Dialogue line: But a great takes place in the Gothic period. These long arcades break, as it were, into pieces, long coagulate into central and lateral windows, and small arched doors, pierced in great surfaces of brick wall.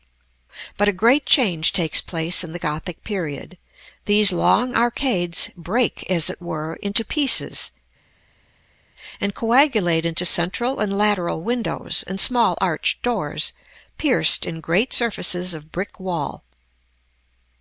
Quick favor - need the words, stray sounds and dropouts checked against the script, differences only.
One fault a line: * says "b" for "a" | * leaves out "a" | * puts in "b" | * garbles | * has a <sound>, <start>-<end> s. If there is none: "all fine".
* puts in "change"
* says "and" for "long"